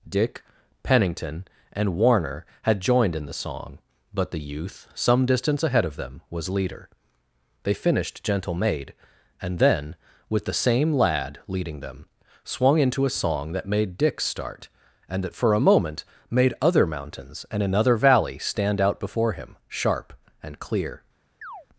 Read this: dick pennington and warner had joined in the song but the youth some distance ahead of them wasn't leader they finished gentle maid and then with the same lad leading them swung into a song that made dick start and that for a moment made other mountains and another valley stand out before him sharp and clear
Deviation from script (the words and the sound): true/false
true